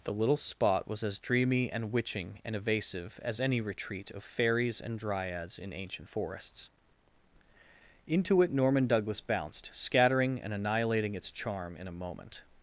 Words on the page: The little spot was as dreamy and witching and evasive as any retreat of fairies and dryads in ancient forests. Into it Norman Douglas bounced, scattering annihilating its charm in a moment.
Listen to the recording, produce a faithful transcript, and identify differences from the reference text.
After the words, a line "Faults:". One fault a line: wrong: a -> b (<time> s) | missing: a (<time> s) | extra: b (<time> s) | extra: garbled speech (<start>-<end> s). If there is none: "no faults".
The little spot was as dreamy and witching and evasive as any retreat of fairies and dryads in ancient forests. Into it Norman Douglas bounced, scattering and annihilating its charm in a moment.
Faults:
extra: and (10.4 s)